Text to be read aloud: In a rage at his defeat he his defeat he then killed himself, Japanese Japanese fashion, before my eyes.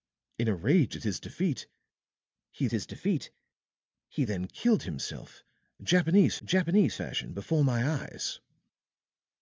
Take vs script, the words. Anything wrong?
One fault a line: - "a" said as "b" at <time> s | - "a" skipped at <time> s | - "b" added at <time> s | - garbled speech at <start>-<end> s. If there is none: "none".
none